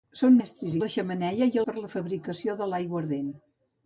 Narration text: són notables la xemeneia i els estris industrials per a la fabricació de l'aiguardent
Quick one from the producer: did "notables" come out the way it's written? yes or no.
no